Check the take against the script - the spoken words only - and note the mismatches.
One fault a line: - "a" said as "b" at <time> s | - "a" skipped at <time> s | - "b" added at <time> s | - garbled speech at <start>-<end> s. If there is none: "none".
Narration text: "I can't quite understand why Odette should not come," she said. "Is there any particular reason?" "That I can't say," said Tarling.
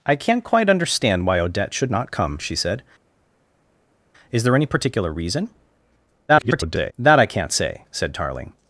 - garbled speech at 6.3-6.9 s